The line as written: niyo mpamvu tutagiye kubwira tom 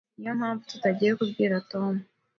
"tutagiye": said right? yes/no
yes